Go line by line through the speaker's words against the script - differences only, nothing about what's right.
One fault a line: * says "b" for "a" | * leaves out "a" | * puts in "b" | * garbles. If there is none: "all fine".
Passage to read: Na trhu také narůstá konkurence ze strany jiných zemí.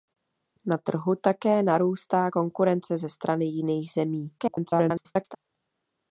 * garbles